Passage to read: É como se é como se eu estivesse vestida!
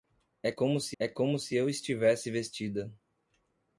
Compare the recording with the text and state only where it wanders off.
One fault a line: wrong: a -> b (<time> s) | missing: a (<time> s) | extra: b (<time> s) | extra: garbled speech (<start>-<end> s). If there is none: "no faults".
no faults